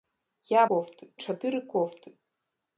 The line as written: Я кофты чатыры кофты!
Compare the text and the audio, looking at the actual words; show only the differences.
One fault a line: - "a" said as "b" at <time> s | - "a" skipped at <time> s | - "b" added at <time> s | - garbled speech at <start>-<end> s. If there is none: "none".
none